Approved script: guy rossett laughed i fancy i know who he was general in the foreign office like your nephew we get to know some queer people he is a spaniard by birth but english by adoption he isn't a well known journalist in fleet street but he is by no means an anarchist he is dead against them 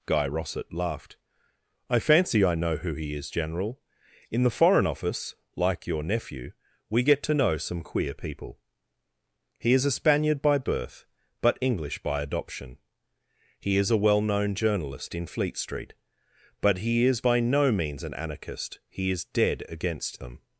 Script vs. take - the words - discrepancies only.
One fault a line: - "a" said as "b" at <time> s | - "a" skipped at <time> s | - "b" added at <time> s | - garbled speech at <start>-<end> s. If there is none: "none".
- "was" said as "is" at 3.1 s
- "isn't" said as "is" at 13.8 s